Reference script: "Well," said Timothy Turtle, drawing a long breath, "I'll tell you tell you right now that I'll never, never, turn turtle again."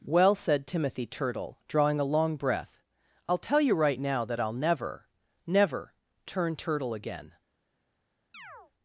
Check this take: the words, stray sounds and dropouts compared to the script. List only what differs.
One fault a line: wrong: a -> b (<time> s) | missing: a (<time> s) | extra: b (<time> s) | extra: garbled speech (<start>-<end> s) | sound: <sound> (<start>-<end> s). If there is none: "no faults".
missing: tell you (3.8 s)
sound: chirp (8.3-8.7 s)